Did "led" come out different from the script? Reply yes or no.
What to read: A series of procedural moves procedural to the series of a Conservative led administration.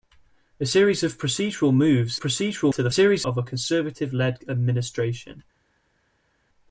no